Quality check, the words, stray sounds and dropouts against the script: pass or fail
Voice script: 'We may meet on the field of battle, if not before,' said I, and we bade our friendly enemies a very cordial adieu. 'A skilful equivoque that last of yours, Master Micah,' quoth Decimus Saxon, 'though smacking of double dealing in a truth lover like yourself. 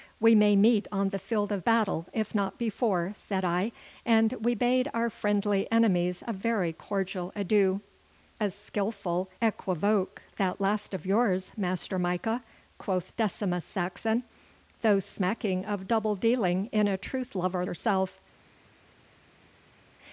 fail